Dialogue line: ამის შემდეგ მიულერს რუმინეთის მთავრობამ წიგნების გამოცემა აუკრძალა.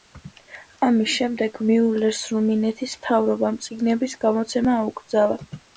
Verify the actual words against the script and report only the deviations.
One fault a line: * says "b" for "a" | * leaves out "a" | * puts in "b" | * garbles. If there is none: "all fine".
all fine